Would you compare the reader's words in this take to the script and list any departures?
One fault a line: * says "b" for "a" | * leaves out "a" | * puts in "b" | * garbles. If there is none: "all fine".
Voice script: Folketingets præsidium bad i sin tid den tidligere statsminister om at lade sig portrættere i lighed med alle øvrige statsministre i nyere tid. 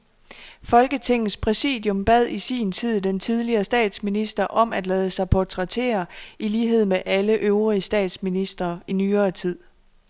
all fine